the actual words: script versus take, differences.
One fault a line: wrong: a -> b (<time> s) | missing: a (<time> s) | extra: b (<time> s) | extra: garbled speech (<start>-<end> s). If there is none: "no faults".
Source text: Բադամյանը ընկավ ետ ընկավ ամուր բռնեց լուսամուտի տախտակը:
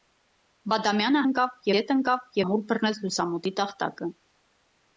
no faults